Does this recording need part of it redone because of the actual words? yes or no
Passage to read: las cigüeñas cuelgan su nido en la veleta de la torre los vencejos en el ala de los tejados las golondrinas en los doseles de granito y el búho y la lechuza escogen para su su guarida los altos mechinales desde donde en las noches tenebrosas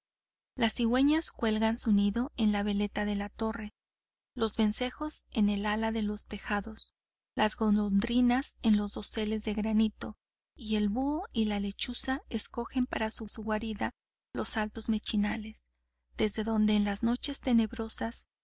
no